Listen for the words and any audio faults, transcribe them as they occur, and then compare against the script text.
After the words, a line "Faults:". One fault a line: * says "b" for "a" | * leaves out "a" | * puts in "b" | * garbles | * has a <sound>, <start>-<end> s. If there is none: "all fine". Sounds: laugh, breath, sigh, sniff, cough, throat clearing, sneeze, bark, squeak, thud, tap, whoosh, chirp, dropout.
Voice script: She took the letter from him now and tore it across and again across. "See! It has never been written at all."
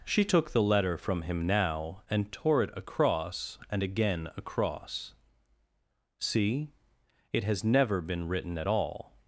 She took the letter from him now and tore it across and again across. "See! It has never been written at all."
Faults:
all fine